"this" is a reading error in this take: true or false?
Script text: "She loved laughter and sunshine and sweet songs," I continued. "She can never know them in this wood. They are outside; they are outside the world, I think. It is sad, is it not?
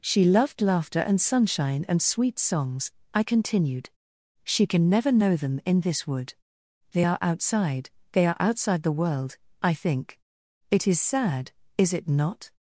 false